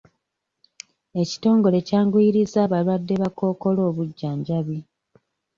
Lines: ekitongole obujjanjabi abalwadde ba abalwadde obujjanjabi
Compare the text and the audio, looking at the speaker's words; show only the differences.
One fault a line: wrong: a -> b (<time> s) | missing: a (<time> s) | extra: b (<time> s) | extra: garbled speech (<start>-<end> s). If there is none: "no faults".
wrong: obujjanjabi -> kyanguyirizza (1.9 s)
wrong: abalwadde -> kkookolo (3.3 s)